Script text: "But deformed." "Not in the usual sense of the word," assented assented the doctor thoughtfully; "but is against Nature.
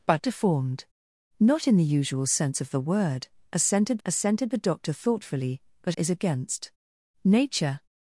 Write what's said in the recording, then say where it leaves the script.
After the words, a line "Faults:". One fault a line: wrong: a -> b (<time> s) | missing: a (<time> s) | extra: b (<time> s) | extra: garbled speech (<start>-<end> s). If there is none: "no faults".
"But deformed." "Not in the usual sense of the word," assented assented the doctor thoughtfully; "but is against Nature.
Faults:
no faults